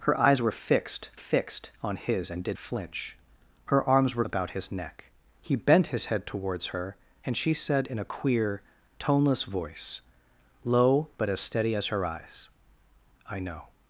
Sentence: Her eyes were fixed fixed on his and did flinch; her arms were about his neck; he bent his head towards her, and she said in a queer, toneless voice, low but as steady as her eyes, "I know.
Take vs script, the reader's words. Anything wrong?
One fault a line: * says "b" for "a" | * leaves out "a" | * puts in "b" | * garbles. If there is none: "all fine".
all fine